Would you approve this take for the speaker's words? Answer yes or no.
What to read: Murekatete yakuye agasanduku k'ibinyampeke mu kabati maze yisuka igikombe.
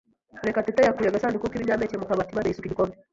yes